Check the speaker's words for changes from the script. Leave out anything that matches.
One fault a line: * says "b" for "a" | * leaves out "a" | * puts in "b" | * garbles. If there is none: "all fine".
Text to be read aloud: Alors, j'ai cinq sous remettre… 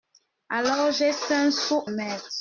all fine